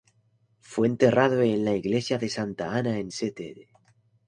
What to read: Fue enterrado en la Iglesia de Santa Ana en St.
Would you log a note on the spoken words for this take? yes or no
no